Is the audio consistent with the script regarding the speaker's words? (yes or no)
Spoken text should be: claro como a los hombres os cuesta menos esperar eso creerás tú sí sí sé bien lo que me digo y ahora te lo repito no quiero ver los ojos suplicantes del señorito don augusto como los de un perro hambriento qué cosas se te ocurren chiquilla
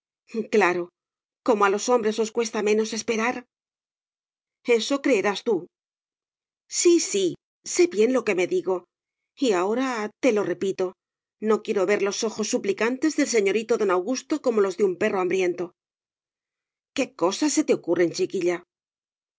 yes